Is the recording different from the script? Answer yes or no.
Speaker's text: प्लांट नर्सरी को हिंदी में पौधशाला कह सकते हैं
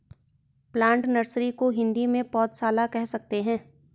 no